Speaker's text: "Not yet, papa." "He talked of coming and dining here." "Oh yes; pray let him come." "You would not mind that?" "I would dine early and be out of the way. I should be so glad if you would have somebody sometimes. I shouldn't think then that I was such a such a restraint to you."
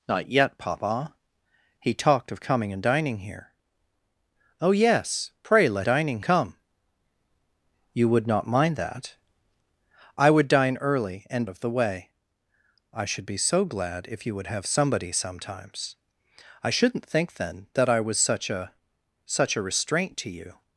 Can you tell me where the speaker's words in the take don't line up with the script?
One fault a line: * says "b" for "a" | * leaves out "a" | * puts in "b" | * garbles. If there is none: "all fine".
* says "dining" for "him"
* leaves out "be out"